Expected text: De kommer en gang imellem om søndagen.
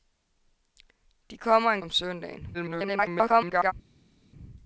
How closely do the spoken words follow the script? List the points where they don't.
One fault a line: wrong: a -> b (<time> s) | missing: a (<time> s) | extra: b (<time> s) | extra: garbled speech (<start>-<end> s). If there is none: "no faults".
missing: gang imellem (1.8 s)
extra: garbled speech (2.5-3.7 s)